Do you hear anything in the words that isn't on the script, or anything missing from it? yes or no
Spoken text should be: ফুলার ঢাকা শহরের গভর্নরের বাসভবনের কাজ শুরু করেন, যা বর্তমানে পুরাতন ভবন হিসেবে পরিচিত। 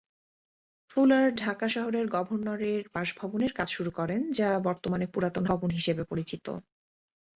no